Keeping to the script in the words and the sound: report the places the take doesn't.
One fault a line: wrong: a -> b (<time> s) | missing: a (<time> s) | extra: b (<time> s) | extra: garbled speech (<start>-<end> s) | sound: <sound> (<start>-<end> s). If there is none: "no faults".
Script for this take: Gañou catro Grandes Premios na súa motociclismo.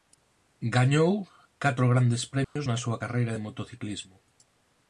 sound: dropout (2.4-2.6 s)
extra: carreira de (3.0 s)